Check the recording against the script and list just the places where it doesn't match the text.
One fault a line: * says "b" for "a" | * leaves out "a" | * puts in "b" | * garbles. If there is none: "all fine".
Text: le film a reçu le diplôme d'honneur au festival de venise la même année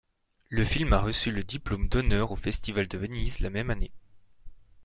all fine